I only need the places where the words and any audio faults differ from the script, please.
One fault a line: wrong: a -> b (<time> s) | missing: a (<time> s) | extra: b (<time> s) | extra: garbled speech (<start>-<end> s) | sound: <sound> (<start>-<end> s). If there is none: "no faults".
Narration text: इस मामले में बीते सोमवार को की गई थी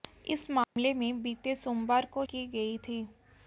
sound: dropout (0.6-0.8 s)